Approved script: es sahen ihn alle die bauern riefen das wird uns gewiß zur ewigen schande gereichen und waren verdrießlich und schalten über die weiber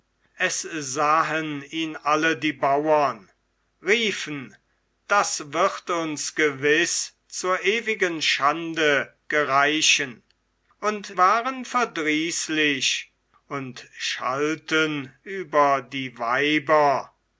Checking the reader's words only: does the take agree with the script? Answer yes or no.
yes